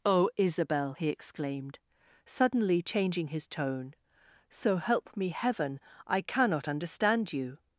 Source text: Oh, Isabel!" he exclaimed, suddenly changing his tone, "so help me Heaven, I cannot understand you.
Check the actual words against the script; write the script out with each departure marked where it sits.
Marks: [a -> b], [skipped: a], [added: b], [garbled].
Oh, Isabel!" he exclaimed, suddenly changing his tone, "so help me Heaven, I cannot understand you.